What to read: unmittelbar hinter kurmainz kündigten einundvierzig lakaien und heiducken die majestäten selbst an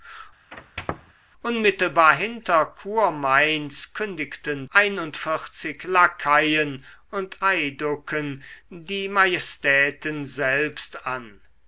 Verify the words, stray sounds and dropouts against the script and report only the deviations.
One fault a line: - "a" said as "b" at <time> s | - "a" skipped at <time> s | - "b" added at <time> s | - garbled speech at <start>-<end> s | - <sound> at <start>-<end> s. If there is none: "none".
- squeak at 0.5-1.1 s